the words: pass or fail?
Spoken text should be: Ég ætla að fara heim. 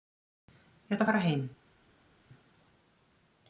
pass